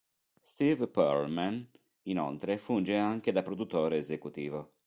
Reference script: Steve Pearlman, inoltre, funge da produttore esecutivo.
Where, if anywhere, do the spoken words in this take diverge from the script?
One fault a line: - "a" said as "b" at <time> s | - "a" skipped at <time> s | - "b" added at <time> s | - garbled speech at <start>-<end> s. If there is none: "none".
- "anche" added at 3.0 s